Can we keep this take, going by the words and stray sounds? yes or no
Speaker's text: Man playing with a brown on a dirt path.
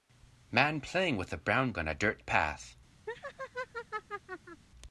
no